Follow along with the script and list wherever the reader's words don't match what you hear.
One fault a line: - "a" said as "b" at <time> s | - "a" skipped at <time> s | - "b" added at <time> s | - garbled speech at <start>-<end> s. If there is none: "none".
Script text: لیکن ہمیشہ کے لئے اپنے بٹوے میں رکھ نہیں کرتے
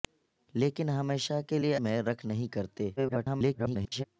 - "اپنے بٹوے" skipped at 1.8 s
- garbled speech at 3.0-4.0 s